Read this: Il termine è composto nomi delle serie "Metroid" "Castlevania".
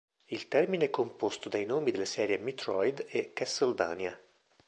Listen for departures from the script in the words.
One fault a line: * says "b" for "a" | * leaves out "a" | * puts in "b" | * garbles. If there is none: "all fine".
* puts in "dai"
* puts in "e"